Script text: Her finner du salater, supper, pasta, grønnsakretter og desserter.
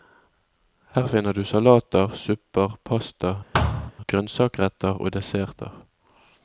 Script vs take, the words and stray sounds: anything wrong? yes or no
yes